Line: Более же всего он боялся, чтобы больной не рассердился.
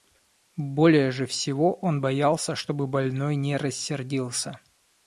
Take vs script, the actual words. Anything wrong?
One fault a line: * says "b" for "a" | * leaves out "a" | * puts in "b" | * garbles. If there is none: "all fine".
all fine